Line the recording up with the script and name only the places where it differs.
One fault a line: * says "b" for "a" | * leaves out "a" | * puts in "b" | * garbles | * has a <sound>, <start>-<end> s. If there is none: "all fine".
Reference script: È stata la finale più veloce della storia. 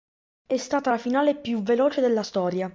all fine